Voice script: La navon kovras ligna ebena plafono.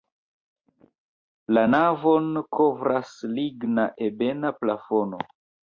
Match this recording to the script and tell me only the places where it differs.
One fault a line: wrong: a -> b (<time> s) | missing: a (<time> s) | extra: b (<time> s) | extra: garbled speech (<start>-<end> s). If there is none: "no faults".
no faults